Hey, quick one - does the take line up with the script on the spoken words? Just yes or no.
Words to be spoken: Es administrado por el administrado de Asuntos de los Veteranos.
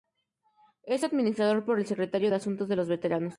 no